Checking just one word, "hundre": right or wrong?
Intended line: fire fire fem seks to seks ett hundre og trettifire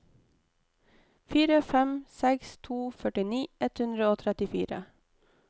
right